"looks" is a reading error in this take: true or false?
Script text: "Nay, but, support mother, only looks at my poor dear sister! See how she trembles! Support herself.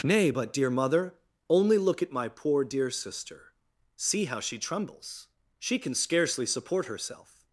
true